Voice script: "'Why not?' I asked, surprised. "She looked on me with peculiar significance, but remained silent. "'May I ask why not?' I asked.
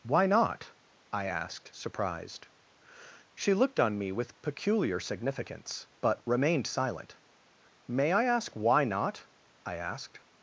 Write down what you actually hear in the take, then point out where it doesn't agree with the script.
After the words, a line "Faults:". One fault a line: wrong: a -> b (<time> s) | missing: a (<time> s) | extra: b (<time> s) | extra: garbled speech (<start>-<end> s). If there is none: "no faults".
"'Why not?' I asked, surprised. "She looked on me with peculiar significance, but remained silent. "'May I ask why not?' I asked.
Faults:
no faults